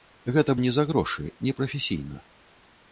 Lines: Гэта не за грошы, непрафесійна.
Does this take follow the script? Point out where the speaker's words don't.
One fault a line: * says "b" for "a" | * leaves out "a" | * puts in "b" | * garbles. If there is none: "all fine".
all fine